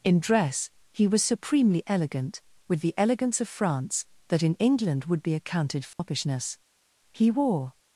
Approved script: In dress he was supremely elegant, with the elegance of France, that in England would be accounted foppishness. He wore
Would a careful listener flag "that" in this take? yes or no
no